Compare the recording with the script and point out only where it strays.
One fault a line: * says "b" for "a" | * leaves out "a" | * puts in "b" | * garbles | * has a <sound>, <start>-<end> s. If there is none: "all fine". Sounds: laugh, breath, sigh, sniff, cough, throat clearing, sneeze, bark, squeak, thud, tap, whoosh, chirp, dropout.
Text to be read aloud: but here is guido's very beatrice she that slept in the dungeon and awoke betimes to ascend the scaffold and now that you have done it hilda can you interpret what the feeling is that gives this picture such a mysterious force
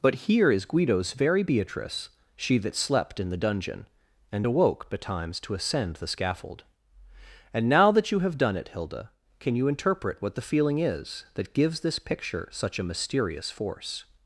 all fine